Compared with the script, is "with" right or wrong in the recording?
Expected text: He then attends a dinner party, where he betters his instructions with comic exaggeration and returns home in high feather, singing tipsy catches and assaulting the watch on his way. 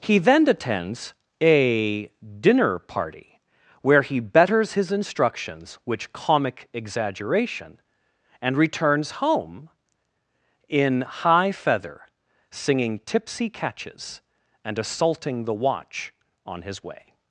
wrong